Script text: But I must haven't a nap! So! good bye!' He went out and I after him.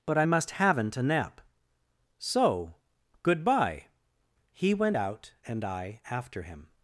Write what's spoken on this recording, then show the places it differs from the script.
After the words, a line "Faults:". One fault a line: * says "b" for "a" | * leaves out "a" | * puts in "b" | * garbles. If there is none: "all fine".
But I must haven't a nap! So! good bye!' He went out and I after him.
Faults:
all fine